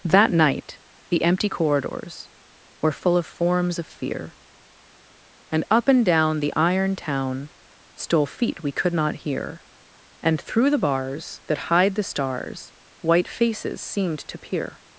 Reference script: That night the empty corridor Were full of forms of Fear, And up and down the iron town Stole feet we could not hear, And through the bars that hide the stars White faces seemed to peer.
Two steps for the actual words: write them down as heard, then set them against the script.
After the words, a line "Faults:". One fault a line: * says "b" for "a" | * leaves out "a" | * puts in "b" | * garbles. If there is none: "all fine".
That night the empty corridors Were full of forms of Fear, And up and down the iron town Stole feet we could not hear, And through the bars that hide the stars White faces seemed to peer.
Faults:
* says "corridors" for "corridor"